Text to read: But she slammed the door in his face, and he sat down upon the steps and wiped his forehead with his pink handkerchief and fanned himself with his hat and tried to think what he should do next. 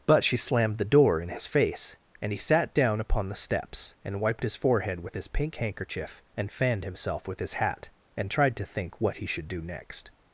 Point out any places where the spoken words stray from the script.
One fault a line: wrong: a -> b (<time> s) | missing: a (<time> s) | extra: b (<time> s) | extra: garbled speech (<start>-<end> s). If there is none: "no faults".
no faults